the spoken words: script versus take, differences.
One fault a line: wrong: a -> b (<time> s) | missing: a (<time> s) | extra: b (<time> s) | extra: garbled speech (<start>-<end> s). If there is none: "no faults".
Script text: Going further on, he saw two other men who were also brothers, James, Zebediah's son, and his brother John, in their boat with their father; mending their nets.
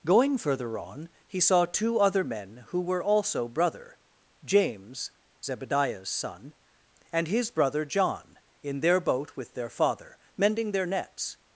wrong: brothers -> brother (3.5 s)